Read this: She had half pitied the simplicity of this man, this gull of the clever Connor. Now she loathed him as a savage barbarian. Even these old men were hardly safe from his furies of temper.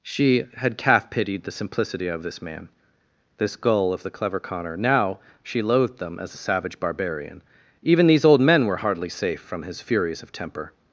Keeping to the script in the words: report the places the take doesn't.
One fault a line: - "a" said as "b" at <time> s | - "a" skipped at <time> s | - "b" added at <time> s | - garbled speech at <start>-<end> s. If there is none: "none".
- "half" said as "calf" at 0.8 s
- "him" said as "them" at 6.0 s